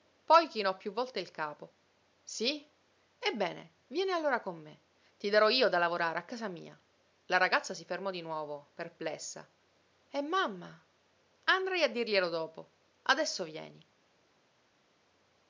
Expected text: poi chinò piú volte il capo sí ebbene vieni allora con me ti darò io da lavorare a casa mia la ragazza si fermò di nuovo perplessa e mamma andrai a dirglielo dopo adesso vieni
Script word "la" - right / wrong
right